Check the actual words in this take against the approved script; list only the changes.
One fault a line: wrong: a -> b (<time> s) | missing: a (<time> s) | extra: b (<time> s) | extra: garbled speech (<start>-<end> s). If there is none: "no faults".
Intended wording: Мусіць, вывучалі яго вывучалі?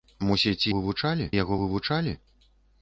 no faults